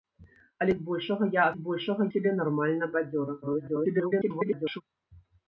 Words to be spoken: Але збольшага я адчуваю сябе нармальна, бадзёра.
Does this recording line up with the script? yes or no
no